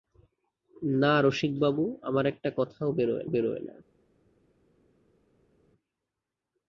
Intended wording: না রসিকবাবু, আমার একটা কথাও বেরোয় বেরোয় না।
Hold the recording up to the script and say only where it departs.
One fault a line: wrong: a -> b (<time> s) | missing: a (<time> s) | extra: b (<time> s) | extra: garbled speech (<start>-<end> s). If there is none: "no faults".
no faults